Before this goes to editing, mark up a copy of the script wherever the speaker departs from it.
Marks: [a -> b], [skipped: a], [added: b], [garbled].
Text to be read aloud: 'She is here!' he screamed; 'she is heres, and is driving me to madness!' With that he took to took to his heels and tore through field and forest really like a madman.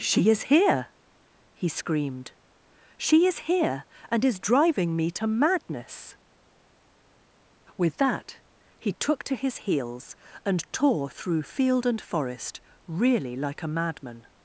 'She is here!' he screamed; 'she is [heres, -> here] and is driving me to madness!' With that he took to [skipped: took to] his heels and tore through field and forest really like a madman.